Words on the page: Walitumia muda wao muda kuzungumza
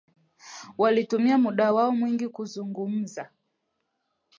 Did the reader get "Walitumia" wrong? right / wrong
right